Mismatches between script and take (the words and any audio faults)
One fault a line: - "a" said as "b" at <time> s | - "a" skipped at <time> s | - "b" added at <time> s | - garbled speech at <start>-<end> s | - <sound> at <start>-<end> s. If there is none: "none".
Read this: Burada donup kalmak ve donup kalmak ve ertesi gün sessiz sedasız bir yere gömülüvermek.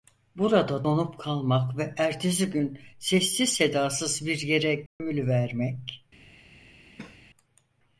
- "donup kalmak ve" skipped at 1.9 s
- dropout at 4.9-5.0 s
- cough at 7.0-7.2 s